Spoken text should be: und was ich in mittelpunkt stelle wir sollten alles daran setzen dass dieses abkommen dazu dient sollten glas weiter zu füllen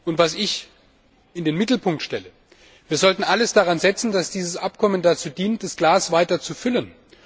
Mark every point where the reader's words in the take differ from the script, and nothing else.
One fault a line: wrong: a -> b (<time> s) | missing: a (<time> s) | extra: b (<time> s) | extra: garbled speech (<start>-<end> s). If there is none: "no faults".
extra: den (1.4 s)
wrong: sollten -> das (5.6 s)